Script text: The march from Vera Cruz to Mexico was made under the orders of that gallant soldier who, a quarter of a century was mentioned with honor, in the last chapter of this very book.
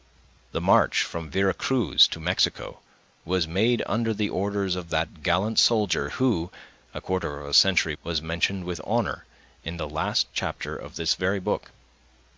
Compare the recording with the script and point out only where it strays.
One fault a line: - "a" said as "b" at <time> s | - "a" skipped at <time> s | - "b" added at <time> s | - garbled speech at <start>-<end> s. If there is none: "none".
none